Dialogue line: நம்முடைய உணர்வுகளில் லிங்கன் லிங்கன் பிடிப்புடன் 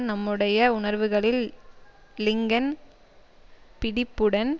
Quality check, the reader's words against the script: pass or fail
fail